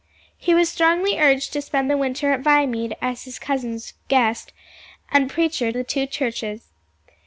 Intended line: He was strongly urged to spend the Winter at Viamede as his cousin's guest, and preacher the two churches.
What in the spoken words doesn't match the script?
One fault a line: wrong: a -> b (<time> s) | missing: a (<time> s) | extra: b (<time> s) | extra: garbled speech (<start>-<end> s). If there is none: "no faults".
no faults